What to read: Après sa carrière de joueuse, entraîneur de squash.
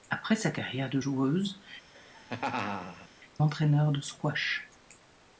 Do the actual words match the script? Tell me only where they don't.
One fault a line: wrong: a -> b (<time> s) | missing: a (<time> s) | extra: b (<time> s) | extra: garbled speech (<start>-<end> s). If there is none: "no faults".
no faults